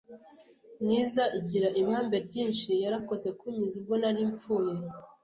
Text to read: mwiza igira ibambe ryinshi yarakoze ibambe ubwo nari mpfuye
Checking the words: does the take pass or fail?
fail